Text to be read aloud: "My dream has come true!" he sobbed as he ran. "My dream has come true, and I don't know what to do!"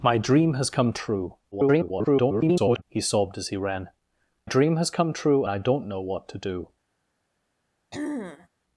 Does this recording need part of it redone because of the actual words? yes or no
yes